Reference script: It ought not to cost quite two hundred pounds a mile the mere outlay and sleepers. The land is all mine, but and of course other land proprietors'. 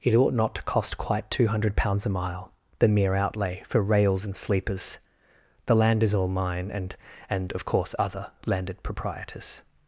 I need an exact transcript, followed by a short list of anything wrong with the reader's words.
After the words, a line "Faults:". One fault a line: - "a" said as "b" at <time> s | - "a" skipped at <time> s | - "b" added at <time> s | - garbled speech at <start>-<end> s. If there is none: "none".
It ought not to cost quite two hundred pounds a mile the mere outlay for rails and sleepers. The land is all mine, and and of course other landed proprietors'.
Faults:
- "for rails" added at 3.7 s
- "but" said as "and" at 6.7 s
- "land" said as "landed" at 8.5 s